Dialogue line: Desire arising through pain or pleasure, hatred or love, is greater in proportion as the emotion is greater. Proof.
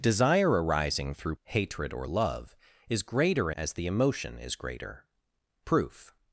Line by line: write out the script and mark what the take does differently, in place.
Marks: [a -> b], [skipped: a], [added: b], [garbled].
Desire arising through [skipped: pain or pleasure,] hatred or love, is greater [skipped: in proportion] as the emotion is greater. Proof.